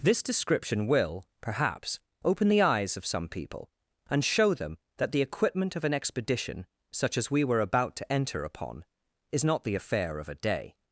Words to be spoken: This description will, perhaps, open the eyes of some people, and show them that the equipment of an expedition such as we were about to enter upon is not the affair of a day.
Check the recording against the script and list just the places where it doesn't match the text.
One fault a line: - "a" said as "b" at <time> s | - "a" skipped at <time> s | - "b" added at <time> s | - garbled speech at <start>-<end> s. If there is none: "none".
none